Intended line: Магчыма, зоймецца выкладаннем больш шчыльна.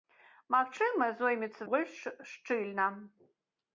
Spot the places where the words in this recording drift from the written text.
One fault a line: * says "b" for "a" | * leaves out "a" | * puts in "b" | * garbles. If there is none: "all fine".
* leaves out "выкладаннем"